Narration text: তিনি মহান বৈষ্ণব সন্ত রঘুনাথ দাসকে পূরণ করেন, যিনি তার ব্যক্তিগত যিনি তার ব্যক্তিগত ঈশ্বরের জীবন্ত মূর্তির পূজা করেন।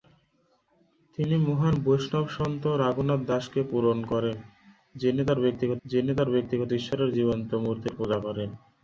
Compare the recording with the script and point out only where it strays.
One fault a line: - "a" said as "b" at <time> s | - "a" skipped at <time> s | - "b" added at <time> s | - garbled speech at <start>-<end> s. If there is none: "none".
none